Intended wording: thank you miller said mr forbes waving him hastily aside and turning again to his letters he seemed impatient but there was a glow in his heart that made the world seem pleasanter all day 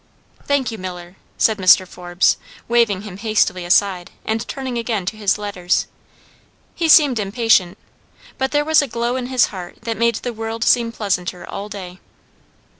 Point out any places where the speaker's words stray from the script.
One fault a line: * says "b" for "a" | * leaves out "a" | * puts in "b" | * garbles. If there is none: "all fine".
all fine